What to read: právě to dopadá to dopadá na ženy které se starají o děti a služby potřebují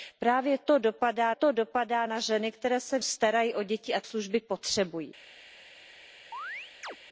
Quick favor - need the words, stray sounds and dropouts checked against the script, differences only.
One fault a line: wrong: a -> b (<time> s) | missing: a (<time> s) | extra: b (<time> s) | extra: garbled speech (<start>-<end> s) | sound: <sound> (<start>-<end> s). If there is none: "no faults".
sound: chirp (6.3-7.0 s)